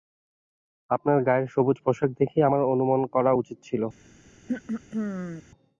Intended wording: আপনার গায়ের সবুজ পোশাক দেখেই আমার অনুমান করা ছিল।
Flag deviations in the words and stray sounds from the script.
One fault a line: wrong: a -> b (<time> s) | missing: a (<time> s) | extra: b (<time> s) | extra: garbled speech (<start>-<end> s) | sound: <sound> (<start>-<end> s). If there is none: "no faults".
extra: উচিত (3.3 s)
sound: throat clearing (4.5-5.4 s)